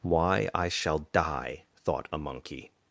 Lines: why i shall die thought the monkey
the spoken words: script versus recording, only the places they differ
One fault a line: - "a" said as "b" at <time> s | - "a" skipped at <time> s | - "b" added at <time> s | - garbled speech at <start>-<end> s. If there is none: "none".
- "the" said as "a" at 2.1 s